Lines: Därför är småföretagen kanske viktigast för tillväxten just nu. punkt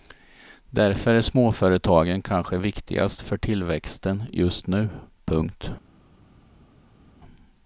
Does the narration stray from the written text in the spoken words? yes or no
no